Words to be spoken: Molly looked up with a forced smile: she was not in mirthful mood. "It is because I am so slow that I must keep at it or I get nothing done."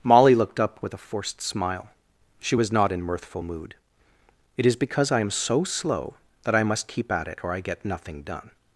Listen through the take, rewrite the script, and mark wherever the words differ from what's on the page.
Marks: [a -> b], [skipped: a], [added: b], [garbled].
Molly looked up with a forced smile: she was not in mirthful mood. "It is because I am so slow that I must keep at it or I get nothing done."